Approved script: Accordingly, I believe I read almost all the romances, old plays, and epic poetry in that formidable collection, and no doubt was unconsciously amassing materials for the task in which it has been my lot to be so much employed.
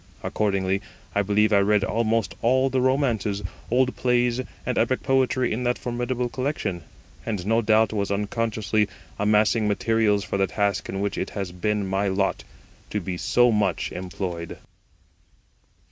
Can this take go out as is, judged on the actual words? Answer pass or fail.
pass